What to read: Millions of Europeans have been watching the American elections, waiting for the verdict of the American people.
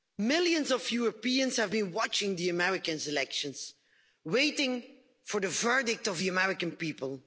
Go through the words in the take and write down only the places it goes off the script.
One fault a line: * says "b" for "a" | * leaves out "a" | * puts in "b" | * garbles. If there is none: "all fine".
all fine